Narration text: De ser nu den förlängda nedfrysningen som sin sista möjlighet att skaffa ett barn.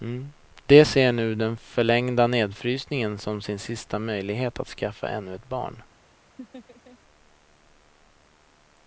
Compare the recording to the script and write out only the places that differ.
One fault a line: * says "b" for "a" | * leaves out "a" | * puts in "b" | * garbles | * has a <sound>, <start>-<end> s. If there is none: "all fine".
* puts in "ännu"
* has a laugh, 6.4-7.0 s